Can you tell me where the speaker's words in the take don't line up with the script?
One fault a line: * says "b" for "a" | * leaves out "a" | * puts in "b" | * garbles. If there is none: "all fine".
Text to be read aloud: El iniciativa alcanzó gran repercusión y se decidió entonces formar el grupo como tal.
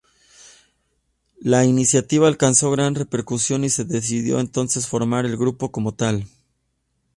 * says "La" for "El"